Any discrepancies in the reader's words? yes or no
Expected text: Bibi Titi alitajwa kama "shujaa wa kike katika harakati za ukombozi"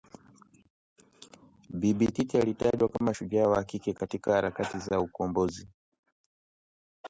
no